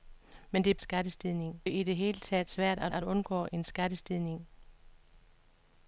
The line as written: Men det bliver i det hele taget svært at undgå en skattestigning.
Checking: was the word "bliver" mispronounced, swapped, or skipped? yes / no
yes